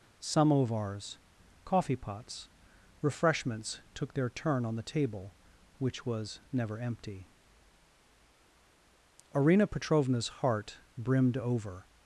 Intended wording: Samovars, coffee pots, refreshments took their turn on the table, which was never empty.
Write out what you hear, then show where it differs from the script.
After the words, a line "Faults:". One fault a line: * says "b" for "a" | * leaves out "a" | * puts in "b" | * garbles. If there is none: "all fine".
Samovars, coffee pots, refreshments took their turn on the table, which was never empty. Arina Petrovna's heart brimmed over
Faults:
* puts in "Arina Petrovna's heart brimmed over"